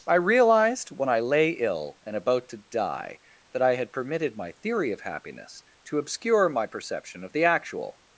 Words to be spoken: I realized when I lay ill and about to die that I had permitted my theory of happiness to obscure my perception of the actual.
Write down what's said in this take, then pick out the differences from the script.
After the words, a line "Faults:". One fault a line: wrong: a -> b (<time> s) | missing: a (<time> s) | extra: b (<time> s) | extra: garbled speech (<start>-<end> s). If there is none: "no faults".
I realized when I lay ill and about to die that I had permitted my theory of happiness to obscure my perception of the actual.
Faults:
no faults